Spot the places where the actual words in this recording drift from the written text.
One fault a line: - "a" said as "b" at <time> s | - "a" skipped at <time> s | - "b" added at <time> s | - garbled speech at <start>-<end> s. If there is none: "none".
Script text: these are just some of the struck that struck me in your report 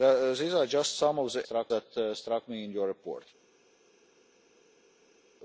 none